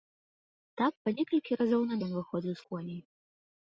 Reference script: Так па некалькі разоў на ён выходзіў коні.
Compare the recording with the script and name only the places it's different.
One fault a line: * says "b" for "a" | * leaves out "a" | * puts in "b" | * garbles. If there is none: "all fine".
all fine